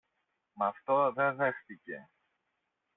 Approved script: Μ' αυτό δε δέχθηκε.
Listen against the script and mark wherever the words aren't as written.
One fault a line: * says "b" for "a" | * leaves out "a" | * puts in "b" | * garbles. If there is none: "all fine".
all fine